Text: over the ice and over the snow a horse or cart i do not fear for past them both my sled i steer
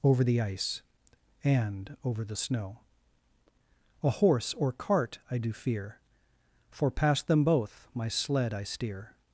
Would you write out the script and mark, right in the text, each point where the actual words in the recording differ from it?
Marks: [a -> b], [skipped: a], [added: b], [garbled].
over the ice and over the snow a horse or cart i do [skipped: not] fear for past them both my sled i steer